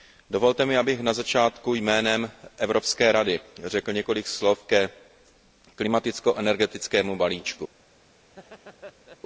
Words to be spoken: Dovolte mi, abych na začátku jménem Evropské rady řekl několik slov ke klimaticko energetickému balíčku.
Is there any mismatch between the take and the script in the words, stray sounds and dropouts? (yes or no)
yes